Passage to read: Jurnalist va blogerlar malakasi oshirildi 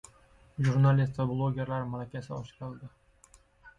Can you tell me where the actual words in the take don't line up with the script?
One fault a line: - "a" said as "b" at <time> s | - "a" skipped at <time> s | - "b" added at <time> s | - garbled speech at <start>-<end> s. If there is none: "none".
none